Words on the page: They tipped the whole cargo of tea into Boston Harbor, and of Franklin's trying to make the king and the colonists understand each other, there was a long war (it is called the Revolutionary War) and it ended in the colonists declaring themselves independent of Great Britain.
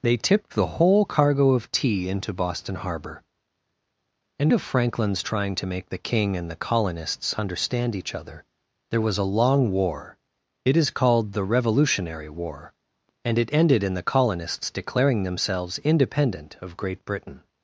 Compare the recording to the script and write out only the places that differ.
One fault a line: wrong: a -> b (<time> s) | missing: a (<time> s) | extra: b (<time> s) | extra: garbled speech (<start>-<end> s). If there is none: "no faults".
no faults